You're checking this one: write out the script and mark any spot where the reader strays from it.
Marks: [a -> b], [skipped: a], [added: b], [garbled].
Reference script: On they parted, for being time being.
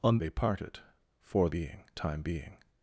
On they parted, for being time being.